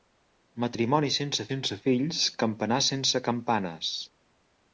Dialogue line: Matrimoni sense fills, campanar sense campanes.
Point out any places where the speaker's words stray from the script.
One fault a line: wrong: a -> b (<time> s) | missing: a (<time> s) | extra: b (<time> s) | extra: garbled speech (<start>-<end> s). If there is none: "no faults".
extra: sense (1.5 s)